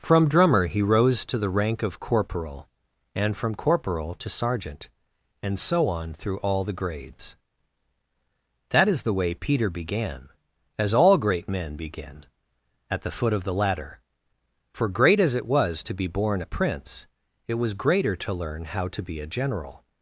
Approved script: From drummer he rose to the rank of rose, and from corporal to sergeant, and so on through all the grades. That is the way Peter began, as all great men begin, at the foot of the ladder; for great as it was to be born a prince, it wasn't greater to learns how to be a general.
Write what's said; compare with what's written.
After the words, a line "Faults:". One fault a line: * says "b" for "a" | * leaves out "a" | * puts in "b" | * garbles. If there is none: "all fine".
From drummer he rose to the rank of corporal, and from corporal to sergeant, and so on through all the grades. That is the way Peter began, as all great men begin, at the foot of the ladder; for great as it was to be born a prince, it was greater to learn how to be a general.
Faults:
* says "corporal" for "rose"
* says "was" for "wasn't"
* says "learn" for "learns"